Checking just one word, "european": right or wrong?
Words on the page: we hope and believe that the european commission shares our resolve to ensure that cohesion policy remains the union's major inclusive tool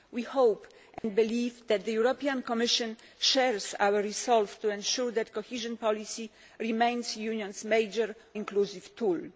right